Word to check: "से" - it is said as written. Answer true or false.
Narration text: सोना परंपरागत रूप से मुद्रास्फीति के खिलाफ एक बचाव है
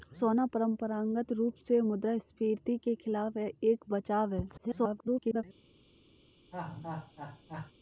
true